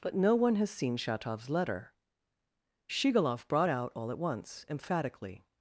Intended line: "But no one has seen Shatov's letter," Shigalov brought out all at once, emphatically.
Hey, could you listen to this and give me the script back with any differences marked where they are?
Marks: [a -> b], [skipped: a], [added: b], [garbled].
"But no one has seen Shatov's letter," Shigalov brought out all at once, emphatically.